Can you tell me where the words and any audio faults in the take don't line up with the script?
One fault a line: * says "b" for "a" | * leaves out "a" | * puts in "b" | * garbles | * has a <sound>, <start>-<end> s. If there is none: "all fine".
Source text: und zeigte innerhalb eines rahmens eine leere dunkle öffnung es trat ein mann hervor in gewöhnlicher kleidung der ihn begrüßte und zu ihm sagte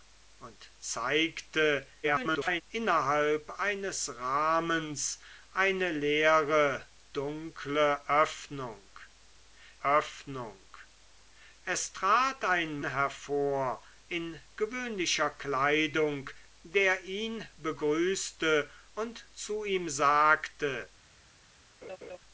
* garbles
* puts in "öffnung"
* leaves out "mann"
* has a laugh, 21.8-22.2 s